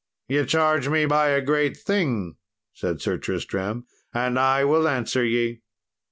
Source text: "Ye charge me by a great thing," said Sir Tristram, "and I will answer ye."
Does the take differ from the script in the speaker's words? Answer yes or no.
no